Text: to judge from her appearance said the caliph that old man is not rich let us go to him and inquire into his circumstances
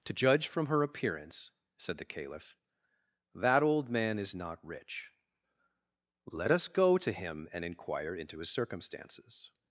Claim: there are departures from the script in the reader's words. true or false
false